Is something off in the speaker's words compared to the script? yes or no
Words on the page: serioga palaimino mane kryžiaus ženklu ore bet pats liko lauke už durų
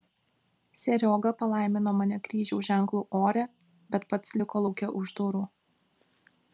no